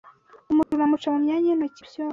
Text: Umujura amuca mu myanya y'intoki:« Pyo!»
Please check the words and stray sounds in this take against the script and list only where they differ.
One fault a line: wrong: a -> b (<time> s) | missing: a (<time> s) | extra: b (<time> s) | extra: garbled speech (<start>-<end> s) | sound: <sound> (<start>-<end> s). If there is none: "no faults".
sound: dropout (0.6-0.7 s)